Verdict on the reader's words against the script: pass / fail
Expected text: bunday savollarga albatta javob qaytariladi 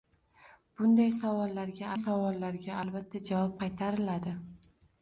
fail